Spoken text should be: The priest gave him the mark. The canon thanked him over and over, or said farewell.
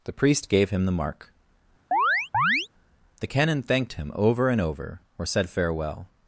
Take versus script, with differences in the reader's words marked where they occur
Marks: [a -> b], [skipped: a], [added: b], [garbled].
The priest gave him the mark. The canon thanked him over and over, or said farewell.